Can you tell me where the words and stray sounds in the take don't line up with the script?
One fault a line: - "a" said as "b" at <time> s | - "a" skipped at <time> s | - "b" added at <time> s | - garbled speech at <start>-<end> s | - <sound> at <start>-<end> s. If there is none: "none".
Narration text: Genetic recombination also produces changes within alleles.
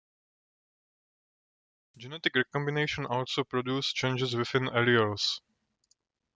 none